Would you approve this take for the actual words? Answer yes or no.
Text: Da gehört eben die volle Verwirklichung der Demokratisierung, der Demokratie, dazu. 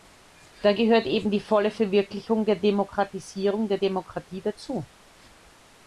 yes